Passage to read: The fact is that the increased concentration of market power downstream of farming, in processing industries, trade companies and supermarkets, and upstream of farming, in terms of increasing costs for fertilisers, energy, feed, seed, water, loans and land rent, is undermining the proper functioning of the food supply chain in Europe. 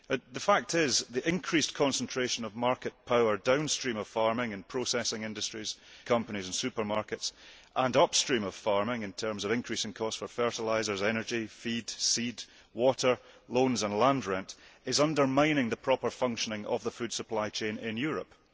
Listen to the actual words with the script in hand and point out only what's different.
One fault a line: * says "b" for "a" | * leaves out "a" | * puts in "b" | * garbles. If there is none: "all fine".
* leaves out "trade"